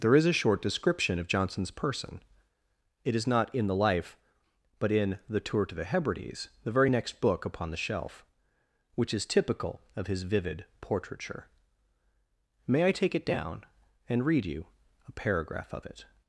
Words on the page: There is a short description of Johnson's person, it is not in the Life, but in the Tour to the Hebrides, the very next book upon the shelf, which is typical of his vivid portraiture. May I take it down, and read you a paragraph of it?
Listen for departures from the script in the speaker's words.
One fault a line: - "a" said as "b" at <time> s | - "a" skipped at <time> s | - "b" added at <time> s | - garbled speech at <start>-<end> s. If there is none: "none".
none